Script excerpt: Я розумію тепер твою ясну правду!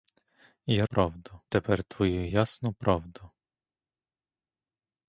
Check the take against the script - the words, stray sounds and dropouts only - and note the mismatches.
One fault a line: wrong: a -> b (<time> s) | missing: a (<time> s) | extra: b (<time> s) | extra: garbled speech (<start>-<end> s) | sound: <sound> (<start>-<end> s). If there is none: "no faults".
wrong: розумію -> правду (0.8 s)